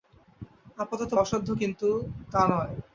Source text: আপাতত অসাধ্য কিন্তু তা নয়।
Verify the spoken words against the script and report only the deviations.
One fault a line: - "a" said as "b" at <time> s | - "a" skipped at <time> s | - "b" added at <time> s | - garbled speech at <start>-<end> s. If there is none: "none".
none